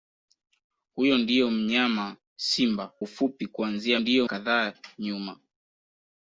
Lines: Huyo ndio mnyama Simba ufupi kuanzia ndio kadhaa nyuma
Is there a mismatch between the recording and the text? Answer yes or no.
no